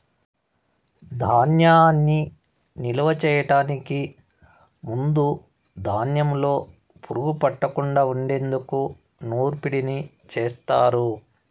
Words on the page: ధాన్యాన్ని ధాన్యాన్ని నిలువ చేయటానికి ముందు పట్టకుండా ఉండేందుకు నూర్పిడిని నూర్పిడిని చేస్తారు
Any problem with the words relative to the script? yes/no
yes